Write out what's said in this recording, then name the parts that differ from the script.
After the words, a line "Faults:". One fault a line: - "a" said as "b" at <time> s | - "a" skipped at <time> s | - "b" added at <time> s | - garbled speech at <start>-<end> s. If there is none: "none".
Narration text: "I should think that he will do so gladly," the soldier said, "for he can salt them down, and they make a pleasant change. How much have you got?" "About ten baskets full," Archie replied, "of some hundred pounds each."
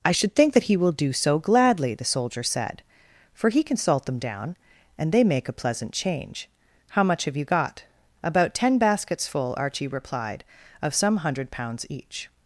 "I should think that he will do so gladly," the soldier said, "for he can salt them down, and they make a pleasant change. How much have you got?" "About ten baskets full," Archie replied, "of some hundred pounds each."
Faults:
none